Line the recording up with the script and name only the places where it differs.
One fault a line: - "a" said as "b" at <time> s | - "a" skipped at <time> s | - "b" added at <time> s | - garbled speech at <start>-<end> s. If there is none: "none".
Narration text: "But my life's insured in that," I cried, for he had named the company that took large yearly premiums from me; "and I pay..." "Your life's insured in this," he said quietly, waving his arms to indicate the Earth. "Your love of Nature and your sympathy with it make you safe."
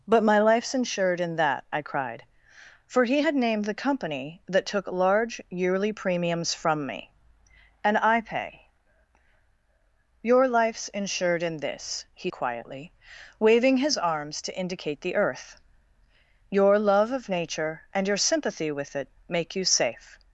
- "said" skipped at 12.3 s